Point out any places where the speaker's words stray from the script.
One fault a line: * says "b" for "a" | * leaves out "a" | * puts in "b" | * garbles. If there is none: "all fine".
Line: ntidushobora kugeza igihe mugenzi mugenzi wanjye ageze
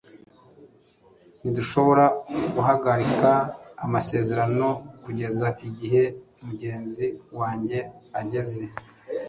* puts in "guhagarika amasezerano"
* leaves out "mugenzi"